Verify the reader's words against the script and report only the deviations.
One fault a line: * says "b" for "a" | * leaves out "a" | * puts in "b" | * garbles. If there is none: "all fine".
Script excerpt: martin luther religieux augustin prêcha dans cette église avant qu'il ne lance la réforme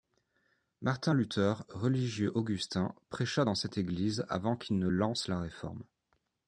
all fine